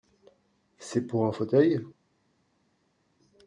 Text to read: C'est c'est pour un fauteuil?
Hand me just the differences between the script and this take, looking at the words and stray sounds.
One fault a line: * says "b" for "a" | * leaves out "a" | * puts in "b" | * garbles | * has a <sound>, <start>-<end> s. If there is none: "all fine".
* leaves out "c'est"